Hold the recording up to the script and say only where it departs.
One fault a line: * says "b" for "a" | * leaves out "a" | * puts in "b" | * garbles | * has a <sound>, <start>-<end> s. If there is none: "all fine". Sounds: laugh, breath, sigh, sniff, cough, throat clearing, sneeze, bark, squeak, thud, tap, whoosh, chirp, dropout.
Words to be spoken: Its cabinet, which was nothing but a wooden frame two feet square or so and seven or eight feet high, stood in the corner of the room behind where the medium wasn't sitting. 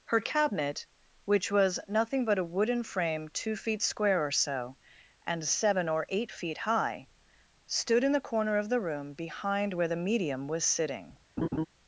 * says "Her" for "Its"
* says "was" for "wasn't"
* has a laugh, 11.4-11.7 s